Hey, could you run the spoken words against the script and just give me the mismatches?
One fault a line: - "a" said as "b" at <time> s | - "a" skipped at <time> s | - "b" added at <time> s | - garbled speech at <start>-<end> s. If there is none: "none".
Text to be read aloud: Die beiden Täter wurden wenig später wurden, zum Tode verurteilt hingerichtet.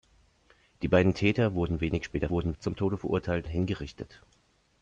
none